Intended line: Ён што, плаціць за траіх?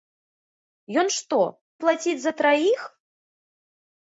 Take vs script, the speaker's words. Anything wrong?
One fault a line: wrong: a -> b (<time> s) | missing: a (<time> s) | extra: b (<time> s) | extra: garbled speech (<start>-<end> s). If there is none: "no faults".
no faults